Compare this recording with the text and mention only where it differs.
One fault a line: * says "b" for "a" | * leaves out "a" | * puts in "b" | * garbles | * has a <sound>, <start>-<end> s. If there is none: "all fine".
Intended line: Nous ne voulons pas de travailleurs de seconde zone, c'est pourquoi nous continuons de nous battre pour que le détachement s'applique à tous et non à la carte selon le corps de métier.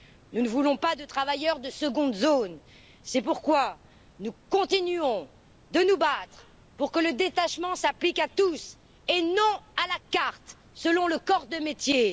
all fine